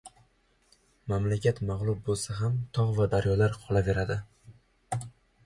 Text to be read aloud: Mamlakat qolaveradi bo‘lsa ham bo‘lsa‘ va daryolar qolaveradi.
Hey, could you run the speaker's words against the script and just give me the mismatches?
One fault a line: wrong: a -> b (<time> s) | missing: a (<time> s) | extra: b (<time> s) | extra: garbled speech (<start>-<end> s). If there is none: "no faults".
wrong: qolaveradi -> mag‘lub (1.7 s)
wrong: bo‘lsa -> tog (2.8 s)